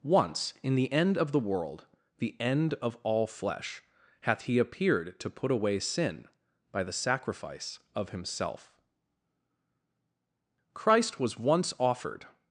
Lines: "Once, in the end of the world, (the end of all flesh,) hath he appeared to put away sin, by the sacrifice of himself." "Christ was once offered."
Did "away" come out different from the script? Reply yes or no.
no